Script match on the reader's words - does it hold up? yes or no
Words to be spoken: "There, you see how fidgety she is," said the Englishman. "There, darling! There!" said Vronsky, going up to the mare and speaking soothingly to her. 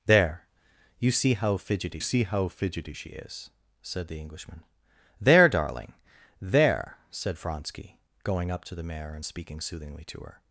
no